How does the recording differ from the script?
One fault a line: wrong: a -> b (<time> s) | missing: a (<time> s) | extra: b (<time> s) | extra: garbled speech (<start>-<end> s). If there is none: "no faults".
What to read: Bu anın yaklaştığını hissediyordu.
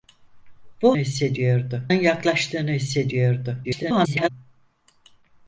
wrong: anın -> hissediyordu (1.0 s)
extra: garbled speech (3.6-4.3 s)